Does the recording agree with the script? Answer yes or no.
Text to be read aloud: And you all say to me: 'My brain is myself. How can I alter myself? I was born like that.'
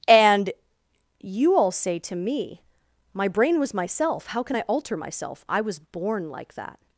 no